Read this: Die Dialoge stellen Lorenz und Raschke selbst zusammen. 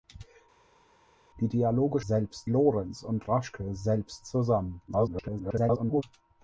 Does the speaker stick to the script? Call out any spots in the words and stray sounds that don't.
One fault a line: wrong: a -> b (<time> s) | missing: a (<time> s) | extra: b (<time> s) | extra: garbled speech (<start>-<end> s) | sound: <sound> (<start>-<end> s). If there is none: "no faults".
wrong: stellen -> selbst (2.0 s)
extra: garbled speech (4.9-6.0 s)